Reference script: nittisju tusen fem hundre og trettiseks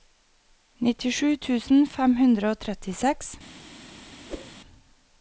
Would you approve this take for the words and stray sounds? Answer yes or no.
no